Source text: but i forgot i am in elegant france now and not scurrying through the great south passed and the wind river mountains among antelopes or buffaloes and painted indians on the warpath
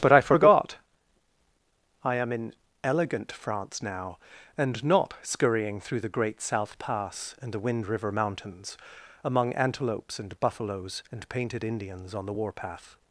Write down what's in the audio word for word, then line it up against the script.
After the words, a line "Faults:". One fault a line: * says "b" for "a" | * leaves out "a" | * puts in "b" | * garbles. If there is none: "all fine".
but i forgot i am in elegant france now and not scurrying through the great south pass and the wind river mountains among antelopes and buffaloes and painted indians on the warpath
Faults:
* says "pass" for "passed"
* says "and" for "or"